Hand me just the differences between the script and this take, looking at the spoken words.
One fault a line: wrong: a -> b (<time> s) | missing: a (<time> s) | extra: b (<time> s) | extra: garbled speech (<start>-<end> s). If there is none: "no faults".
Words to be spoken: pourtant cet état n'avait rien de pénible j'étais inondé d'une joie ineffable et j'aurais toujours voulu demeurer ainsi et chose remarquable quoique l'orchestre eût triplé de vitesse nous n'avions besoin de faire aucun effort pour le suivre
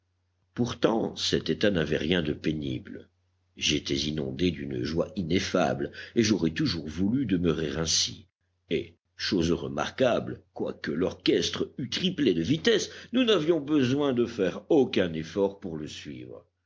no faults